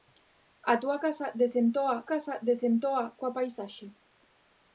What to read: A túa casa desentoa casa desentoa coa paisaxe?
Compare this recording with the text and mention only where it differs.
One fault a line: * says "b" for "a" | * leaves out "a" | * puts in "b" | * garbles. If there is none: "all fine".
all fine